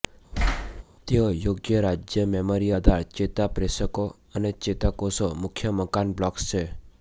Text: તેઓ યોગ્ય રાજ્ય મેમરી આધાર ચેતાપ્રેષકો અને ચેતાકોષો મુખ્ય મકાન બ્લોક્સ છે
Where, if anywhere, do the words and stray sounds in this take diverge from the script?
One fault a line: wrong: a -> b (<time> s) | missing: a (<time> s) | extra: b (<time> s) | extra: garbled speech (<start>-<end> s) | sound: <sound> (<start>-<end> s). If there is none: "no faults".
sound: thud (0.3-0.8 s)